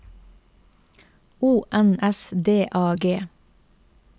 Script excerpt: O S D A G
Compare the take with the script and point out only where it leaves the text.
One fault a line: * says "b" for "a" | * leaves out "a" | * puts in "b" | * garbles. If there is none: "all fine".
* puts in "N"